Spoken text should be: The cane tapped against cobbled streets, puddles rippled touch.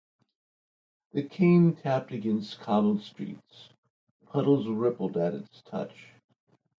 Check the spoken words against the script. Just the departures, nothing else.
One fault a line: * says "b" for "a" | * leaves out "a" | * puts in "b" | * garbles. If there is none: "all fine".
* puts in "at its"